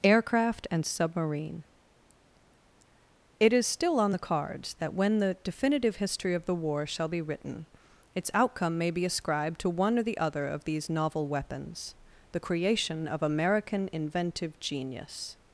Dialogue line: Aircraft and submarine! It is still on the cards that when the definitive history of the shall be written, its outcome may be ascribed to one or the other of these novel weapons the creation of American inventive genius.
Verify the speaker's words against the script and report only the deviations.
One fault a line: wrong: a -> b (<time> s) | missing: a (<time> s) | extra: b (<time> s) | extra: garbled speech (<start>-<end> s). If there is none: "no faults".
extra: war (6.5 s)